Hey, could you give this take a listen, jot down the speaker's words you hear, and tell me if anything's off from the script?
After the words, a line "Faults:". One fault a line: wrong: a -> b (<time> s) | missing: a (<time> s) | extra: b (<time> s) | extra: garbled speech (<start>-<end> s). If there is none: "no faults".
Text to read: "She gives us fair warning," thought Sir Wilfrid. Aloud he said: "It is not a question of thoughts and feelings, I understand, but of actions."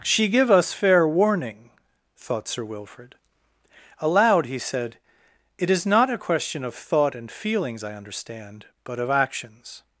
"She give us fair warning," thought Sir Wilfrid. Aloud he said: "It is not a question of thought and feelings, I understand, but of actions."
Faults:
wrong: gives -> give (0.3 s)
wrong: thoughts -> thought (6.7 s)